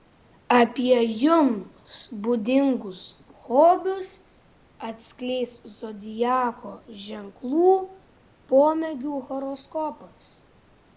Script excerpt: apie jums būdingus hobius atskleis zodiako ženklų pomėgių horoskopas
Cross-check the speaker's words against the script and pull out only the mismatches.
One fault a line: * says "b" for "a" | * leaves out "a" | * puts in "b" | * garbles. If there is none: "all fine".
all fine